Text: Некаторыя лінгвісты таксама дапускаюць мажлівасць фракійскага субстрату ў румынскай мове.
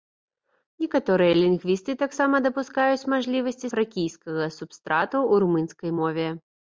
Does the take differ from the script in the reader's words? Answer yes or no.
no